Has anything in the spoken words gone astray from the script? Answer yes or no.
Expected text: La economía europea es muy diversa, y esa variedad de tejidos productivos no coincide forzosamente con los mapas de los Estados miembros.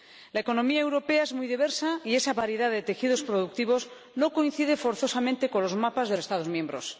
yes